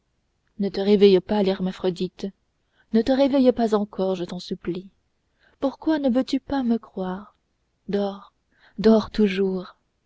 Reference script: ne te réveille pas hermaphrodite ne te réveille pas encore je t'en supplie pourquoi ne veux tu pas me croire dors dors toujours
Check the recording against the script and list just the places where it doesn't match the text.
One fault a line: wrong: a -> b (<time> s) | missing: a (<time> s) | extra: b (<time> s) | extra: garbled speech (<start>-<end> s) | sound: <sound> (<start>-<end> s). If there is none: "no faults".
no faults